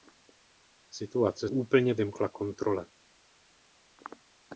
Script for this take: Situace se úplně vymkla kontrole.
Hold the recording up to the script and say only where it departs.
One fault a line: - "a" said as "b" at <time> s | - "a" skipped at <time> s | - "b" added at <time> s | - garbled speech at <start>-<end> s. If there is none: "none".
- "se" skipped at 1.5 s